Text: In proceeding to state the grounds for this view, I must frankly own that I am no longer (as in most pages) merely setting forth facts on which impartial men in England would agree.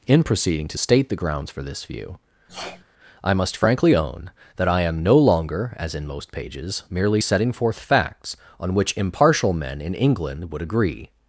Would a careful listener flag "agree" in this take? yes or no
no